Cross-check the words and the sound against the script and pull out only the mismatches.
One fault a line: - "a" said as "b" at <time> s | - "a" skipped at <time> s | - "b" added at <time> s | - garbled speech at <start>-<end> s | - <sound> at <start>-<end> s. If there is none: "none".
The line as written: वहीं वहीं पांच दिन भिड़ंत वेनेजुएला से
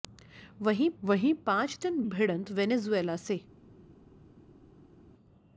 none